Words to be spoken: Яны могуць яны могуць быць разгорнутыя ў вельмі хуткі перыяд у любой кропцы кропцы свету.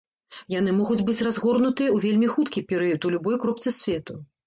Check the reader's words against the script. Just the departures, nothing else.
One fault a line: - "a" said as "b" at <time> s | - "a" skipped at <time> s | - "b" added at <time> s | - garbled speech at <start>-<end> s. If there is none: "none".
- "яны могуць" skipped at 1.0 s
- "кропцы" skipped at 3.7 s